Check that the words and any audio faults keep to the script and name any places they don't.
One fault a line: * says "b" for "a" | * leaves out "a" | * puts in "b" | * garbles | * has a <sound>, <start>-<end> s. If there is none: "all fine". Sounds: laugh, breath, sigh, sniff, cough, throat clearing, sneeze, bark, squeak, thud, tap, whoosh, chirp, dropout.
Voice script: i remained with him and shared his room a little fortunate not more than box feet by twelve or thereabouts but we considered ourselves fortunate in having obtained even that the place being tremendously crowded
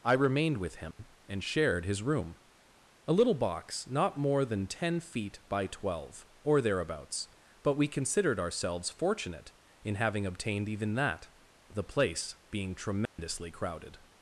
* has a dropout, 0.9-1.0 s
* says "box" for "fortunate"
* says "ten" for "box"
* has a dropout, 13.1-13.2 s